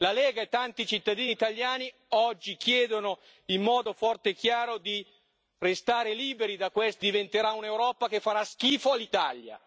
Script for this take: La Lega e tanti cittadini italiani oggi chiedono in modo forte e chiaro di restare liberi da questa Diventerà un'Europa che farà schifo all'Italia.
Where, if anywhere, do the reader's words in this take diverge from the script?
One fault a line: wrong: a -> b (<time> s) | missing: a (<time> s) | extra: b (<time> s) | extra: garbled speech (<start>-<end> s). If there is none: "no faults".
no faults